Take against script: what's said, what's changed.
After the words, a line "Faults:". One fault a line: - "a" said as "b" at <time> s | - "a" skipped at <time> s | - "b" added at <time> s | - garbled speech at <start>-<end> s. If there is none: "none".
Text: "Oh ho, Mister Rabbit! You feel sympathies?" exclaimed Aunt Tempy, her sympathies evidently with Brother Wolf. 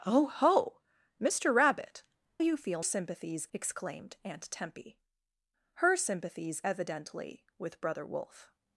"Oh ho, Mister Rabbit! You feel sympathies?" exclaimed Aunt Tempy, her sympathies evidently with Brother Wolf.
Faults:
none